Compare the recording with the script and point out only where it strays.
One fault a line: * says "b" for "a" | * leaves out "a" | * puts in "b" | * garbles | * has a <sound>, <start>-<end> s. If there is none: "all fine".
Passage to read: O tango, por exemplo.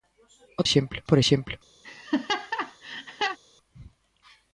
* says "exemplo" for "tango"
* has a laugh, 1.8-3.4 s